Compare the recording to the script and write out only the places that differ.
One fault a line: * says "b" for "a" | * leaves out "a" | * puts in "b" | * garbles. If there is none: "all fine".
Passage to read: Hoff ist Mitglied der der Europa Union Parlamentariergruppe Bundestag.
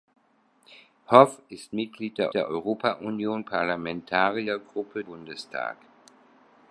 all fine